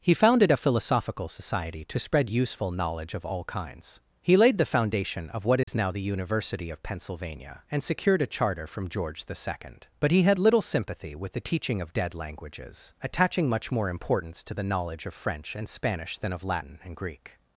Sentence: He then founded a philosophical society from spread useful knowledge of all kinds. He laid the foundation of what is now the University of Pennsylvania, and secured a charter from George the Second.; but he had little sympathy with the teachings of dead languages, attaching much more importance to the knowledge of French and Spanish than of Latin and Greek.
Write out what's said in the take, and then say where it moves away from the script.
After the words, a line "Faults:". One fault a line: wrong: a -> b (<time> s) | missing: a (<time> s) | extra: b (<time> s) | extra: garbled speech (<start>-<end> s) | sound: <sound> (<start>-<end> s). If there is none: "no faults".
He founded a philosophical society to spread useful knowledge of all kinds. He laid the foundation of what is now the University of Pennsylvania, and secured a charter from George the Second.; but he had little sympathy with the teaching of dead languages, attaching much more importance to the knowledge of French and Spanish than of Latin and Greek.
Faults:
missing: then (0.1 s)
wrong: from -> to (1.9 s)
sound: dropout (5.6-5.7 s)
wrong: teachings -> teaching (11.5 s)